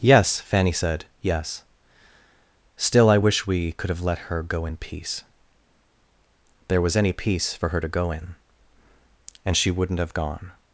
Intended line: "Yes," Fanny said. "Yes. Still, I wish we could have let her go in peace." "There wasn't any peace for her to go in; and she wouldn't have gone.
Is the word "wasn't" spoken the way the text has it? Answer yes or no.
no